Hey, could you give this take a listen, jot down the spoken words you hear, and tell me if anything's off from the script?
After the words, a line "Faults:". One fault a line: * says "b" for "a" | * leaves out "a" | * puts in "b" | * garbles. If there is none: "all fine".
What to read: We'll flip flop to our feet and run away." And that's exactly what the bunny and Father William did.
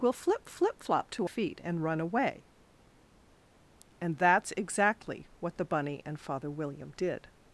We'll flip flip flop to feet and run away." And that's exactly what the bunny and Father William did.
Faults:
* puts in "flip"
* leaves out "our"